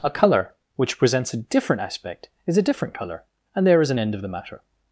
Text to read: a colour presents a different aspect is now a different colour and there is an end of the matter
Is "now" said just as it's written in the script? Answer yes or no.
no